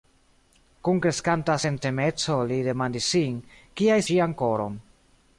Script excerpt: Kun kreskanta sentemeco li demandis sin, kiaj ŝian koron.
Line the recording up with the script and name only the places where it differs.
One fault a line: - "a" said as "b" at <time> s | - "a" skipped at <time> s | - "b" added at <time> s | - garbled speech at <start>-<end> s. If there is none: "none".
none